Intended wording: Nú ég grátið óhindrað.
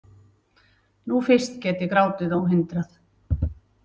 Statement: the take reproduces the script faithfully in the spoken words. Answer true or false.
false